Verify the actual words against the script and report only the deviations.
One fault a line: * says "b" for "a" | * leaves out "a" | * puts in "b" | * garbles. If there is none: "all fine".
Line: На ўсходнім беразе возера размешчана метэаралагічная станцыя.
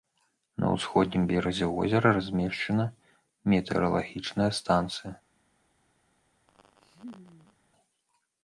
all fine